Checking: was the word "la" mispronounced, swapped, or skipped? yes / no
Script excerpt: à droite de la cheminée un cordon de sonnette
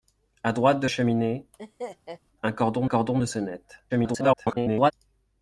yes